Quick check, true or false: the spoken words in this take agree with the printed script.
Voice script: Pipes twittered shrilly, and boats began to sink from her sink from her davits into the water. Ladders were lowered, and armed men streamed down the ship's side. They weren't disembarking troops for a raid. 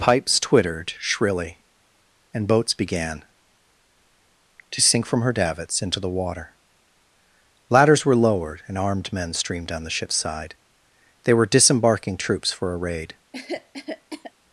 false